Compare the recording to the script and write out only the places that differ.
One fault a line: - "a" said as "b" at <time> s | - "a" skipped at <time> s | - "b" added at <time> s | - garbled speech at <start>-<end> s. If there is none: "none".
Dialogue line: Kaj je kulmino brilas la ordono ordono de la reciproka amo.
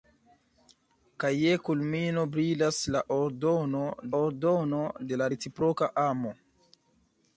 none